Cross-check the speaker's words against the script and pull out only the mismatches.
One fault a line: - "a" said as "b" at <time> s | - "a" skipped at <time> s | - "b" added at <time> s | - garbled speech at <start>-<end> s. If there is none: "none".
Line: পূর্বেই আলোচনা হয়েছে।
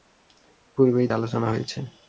none